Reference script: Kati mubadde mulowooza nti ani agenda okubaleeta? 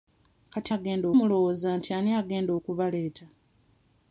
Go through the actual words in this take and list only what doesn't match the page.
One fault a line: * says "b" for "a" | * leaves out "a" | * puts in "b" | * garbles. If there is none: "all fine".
* says "agenda" for "mubadde"